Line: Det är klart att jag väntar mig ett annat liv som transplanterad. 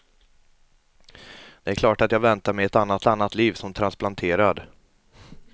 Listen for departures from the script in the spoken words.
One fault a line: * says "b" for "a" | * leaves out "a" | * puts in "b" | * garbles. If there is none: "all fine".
* puts in "annat"